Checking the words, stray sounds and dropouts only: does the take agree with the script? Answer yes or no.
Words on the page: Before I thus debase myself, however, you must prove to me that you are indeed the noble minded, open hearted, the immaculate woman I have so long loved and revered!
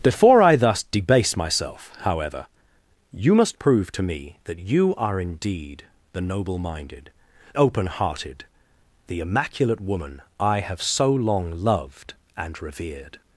yes